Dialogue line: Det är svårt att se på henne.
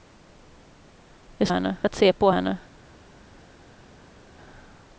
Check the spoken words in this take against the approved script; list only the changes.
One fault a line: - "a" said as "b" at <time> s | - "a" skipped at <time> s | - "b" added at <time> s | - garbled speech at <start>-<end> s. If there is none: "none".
- "svårt" said as "henne" at 1.5 s